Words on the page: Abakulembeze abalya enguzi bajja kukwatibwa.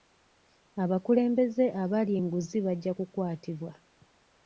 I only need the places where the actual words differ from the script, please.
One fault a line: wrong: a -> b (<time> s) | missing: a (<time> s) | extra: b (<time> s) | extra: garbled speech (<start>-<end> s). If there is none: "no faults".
no faults